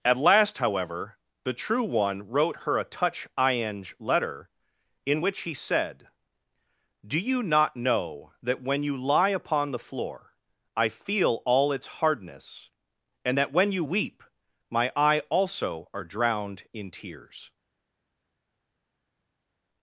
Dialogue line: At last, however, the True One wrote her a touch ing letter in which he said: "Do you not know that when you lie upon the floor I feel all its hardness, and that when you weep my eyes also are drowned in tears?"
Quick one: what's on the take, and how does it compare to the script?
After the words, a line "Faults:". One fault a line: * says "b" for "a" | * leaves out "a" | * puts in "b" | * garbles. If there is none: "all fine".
At last, however, the True One wrote her a touch ing letter in which he said: "Do you not know that when you lie upon the floor I feel all its hardness, and that when you weep my eye also are drowned in tears?"
Faults:
* says "eye" for "eyes"